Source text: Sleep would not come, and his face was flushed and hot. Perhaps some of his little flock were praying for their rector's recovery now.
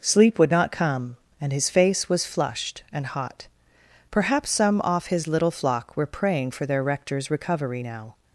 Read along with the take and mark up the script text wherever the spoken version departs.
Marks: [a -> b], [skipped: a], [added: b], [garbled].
Sleep would not come, and his face was flushed and hot. Perhaps some [of -> off] his little flock were praying for their rector's recovery now.